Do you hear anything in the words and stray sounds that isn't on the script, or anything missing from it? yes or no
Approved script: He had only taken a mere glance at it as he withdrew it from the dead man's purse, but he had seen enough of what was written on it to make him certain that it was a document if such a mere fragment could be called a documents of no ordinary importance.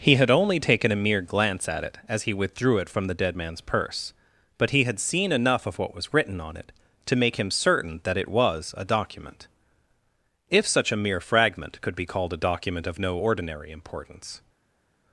yes